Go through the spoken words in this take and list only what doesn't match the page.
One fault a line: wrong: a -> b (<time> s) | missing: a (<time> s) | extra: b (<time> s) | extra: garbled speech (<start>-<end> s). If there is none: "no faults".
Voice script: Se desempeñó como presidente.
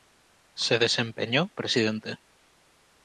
missing: como (1.5 s)